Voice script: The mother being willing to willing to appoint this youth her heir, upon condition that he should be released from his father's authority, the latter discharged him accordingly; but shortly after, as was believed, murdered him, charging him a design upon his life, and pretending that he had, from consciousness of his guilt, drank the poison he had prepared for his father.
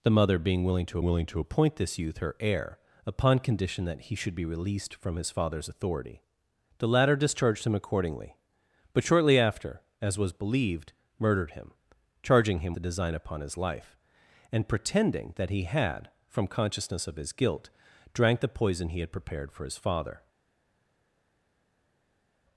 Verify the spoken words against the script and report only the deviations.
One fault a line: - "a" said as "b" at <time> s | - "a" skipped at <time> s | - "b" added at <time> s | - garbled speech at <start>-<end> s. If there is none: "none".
none